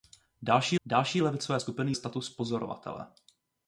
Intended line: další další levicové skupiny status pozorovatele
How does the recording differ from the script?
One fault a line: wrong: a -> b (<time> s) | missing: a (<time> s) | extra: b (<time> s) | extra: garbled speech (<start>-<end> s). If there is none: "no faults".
no faults